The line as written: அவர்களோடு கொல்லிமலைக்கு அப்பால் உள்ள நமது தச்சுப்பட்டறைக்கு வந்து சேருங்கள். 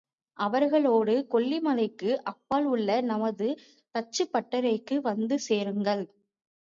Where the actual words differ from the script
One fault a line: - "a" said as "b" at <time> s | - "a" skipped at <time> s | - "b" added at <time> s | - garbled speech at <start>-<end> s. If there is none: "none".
none